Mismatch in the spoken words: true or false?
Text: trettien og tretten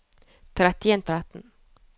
false